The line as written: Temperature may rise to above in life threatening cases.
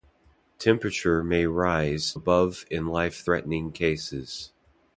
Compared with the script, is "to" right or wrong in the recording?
wrong